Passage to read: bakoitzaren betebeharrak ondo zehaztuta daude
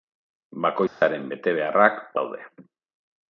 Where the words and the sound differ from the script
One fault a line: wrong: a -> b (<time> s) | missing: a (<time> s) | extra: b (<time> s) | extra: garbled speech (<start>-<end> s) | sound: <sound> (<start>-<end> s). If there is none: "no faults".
sound: dropout (0.9-1.0 s)
missing: ondo zehaztuta (2.0 s)